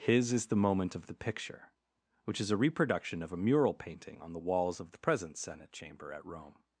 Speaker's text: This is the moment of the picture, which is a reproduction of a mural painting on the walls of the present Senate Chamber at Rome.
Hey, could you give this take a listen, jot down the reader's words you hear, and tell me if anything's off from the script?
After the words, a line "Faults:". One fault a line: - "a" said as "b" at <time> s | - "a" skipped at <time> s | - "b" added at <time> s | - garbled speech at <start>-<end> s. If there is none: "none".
His is the moment of the picture, which is a reproduction of a mural painting on the walls of the present Senate Chamber at Rome.
Faults:
- "This" said as "His" at 0.0 s